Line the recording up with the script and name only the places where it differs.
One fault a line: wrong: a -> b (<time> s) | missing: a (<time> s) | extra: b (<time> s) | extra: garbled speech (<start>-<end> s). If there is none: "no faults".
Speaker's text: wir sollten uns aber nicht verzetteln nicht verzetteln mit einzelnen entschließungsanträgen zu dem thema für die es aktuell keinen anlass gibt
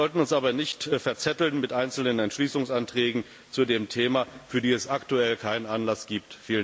missing: nicht verzetteln (1.6 s)